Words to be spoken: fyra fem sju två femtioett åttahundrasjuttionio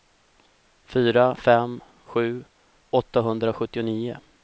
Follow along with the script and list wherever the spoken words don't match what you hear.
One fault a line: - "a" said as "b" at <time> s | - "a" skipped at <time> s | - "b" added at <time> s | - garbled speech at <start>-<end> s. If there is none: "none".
- "två femtioett" skipped at 2.4 s